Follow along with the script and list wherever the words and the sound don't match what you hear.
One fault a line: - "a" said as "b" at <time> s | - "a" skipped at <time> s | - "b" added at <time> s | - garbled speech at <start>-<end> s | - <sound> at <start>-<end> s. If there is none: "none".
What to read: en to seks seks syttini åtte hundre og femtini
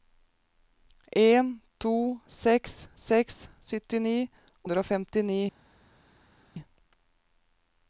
- "åtte" skipped at 4.2 s